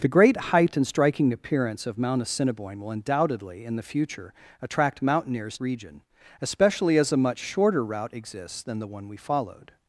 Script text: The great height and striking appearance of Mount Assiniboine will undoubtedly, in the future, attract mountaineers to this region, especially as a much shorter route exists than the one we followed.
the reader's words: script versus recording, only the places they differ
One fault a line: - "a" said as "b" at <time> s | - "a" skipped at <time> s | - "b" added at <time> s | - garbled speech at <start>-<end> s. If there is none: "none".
- "to this" skipped at 5.6 s